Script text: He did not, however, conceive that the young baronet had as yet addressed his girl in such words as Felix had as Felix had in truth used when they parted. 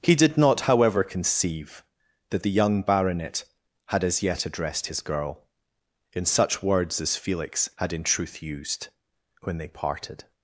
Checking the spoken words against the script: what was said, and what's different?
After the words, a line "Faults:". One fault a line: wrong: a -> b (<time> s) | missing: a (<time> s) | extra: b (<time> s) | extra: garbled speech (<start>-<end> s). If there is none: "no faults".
He did not, however, conceive that the young baronet had as yet addressed his girl in such words as Felix had in truth used when they parted.
Faults:
missing: as Felix had (7.9 s)